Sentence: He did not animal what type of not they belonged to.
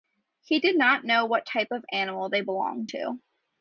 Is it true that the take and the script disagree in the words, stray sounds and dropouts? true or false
true